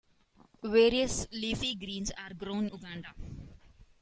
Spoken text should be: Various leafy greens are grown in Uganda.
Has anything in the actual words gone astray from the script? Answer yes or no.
yes